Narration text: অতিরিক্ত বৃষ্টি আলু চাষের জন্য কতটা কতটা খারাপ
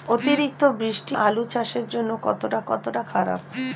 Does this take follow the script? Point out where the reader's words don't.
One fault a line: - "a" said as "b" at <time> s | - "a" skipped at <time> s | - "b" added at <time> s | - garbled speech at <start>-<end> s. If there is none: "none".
none